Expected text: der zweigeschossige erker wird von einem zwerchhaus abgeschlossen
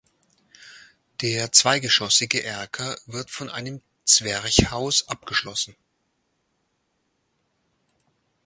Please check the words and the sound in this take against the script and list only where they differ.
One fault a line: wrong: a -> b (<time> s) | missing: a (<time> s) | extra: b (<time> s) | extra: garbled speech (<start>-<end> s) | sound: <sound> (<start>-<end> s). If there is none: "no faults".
no faults